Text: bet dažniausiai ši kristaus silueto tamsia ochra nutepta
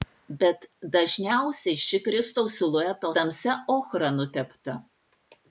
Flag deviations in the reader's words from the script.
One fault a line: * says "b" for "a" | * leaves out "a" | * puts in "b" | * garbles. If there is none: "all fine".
all fine